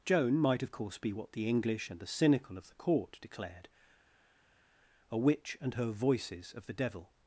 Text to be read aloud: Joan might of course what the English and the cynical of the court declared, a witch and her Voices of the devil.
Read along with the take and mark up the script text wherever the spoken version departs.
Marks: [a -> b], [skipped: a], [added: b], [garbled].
Joan might of course [added: be] what the English and the cynical of the court declared, a witch and her Voices of the devil.